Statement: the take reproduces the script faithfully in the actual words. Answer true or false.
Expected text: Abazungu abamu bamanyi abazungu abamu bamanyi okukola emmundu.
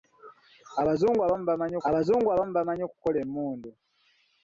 true